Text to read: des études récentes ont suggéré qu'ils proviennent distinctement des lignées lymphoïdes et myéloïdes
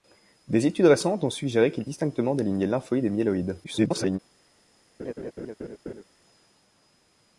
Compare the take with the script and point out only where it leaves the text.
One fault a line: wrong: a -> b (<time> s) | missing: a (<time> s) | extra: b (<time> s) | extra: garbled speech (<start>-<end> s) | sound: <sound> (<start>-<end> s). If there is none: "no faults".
missing: proviennent (1.9 s)
extra: garbled speech (3.6-4.2 s)
sound: laugh (5.0-6.0 s)